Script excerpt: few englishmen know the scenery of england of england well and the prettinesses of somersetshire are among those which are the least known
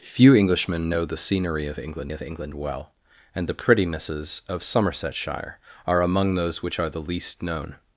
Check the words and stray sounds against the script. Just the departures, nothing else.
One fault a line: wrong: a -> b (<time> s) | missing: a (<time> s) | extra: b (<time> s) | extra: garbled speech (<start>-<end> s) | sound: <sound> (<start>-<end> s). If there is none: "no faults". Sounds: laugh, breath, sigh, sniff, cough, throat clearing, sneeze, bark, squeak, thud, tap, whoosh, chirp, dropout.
no faults